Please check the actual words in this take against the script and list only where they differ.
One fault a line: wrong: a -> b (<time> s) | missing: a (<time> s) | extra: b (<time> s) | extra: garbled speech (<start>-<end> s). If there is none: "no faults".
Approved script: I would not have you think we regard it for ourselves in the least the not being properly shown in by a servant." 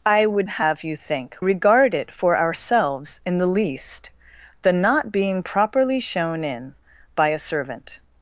missing: not (0.5 s)
missing: we (1.4 s)